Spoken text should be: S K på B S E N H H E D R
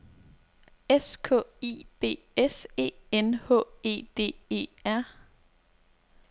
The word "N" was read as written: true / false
true